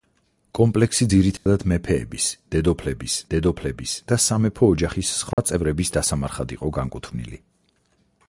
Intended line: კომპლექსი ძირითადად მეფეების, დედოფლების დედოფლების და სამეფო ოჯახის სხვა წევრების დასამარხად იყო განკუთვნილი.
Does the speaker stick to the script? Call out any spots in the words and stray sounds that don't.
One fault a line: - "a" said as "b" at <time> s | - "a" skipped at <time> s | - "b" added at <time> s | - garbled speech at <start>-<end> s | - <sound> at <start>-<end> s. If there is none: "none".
- dropout at 1.4-1.5 s
- dropout at 5.3-5.4 s